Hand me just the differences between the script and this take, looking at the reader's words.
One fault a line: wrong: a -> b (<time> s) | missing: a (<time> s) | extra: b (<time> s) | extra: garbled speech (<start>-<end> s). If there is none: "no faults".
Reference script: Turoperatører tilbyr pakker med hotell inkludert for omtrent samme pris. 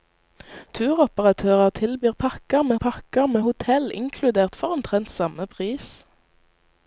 extra: pakker med (2.9 s)